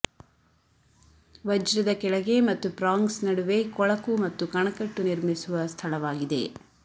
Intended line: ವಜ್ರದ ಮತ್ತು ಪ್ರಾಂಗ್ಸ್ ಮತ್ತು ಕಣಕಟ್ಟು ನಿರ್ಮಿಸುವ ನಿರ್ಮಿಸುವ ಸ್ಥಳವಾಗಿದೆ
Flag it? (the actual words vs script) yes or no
yes